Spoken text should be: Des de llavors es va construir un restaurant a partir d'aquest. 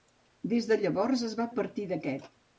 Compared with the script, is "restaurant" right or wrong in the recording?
wrong